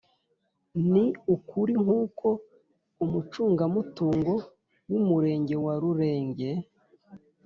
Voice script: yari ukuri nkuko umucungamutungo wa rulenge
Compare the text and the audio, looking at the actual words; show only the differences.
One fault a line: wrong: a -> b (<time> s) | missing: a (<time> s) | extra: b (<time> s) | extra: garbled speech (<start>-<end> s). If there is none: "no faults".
wrong: yari -> ni (0.9 s)
extra: w'umurenge (4.9 s)